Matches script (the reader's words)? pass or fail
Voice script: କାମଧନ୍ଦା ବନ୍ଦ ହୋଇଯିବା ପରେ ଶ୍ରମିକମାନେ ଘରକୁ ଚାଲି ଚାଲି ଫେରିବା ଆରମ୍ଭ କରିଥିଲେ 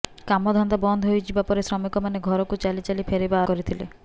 fail